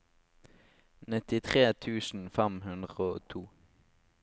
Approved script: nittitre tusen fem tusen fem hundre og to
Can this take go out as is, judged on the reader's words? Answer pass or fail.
fail